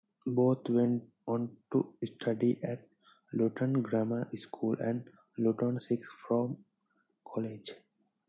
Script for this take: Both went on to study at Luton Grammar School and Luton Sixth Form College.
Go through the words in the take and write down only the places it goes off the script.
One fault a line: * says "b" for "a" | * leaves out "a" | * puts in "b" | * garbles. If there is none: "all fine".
all fine